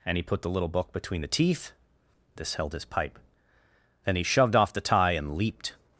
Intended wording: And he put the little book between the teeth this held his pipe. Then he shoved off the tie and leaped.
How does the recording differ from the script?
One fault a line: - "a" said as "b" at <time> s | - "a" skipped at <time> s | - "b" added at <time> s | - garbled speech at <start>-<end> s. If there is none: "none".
none